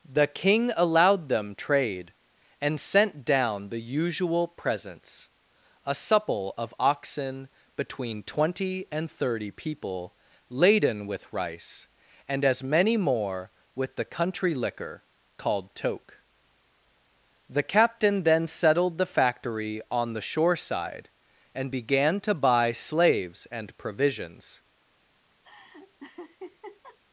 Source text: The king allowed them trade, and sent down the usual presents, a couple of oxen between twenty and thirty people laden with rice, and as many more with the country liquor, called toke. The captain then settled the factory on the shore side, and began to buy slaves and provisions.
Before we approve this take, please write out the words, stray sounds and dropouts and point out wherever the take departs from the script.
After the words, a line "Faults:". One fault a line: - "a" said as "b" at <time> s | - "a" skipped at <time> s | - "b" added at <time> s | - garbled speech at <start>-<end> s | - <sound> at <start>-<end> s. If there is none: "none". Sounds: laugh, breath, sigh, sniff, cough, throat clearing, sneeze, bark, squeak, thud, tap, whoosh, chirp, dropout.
The king allowed them trade, and sent down the usual presents, a supple of oxen between twenty and thirty people laden with rice, and as many more with the country liquor, called toke. The captain then settled the factory on the shore side, and began to buy slaves and provisions.
Faults:
- "couple" said as "supple" at 6.0 s
- laugh at 25.4-27.0 s